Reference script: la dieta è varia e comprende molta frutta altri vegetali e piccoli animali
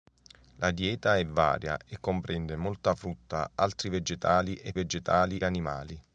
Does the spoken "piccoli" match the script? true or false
false